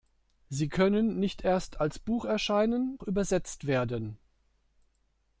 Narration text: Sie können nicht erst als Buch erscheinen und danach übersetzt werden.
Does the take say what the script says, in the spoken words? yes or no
no